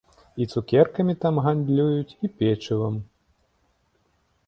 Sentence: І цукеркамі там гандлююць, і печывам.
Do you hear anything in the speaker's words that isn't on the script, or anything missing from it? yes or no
no